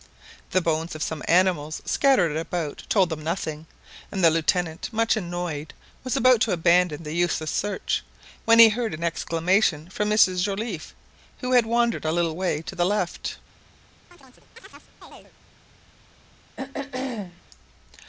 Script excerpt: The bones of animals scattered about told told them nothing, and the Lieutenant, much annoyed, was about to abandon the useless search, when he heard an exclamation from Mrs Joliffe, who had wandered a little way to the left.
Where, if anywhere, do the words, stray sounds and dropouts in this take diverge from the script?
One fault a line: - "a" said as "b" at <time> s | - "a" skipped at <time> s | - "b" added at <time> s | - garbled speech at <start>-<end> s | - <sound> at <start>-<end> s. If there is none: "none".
- "some" added at 1.0 s
- "told" skipped at 3.1 s
- chirp at 14.1-15.3 s
- throat clearing at 16.6-17.4 s